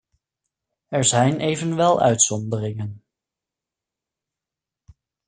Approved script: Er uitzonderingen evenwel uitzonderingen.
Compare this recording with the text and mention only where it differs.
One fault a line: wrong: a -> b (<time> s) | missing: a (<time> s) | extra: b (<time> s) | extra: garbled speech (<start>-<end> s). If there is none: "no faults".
wrong: uitzonderingen -> zijn (1.0 s)